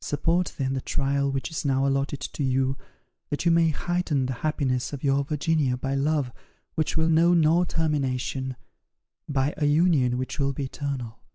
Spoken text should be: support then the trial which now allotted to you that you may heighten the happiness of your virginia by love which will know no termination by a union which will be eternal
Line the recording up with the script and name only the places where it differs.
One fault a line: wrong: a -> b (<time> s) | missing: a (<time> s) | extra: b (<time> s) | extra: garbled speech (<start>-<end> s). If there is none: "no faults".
extra: is (1.5 s)